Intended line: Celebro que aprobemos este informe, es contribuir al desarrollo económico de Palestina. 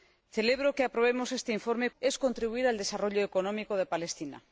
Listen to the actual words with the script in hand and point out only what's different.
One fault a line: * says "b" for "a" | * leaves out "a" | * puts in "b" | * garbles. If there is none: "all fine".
all fine